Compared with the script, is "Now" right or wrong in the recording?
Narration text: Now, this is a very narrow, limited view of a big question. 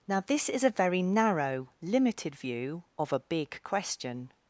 right